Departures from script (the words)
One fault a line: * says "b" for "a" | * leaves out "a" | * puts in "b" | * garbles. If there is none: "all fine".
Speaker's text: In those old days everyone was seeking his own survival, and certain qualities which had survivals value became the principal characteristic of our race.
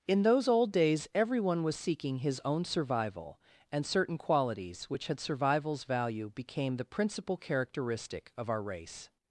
all fine